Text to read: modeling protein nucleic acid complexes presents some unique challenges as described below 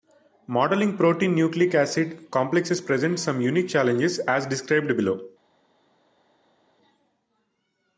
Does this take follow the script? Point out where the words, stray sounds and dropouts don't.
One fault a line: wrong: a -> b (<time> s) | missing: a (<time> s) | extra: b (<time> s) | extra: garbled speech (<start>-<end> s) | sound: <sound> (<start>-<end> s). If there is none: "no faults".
no faults